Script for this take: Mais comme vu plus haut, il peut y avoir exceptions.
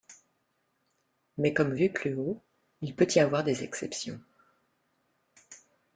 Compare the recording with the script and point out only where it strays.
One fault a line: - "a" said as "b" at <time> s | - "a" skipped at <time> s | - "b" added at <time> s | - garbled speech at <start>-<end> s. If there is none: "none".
- "des" added at 3.5 s